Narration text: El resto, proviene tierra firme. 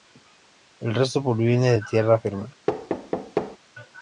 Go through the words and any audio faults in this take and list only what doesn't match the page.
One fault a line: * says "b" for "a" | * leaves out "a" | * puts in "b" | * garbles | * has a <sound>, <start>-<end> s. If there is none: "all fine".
* puts in "de"
* has a thud, 2.7-3.6 s